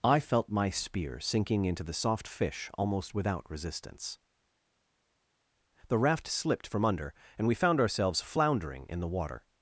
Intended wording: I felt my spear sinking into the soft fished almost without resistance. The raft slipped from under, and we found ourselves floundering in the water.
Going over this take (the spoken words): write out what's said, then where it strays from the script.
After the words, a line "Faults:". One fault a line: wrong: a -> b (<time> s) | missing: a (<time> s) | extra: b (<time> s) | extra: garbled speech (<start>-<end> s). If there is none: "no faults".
I felt my spear sinking into the soft fish almost without resistance. The raft slipped from under, and we found ourselves floundering in the water.
Faults:
wrong: fished -> fish (2.3 s)